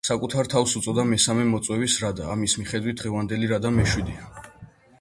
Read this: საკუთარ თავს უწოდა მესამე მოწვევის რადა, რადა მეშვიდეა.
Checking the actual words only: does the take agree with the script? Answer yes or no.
no